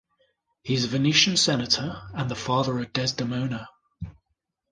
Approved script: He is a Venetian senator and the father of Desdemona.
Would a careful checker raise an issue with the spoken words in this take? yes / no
no